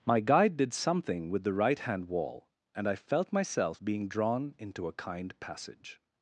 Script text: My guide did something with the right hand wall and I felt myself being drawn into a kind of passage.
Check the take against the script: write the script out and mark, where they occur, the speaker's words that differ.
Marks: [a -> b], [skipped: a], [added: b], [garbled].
My guide did something with the right hand wall and I felt myself being drawn into a kind [skipped: of] passage.